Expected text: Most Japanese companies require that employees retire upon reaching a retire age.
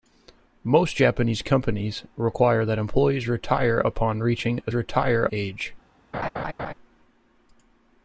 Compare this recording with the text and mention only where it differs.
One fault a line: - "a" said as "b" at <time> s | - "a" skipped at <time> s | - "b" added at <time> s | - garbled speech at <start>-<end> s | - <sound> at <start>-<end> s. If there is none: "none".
- laugh at 6.1-6.7 s